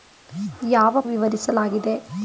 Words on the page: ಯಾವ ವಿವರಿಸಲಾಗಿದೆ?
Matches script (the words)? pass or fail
pass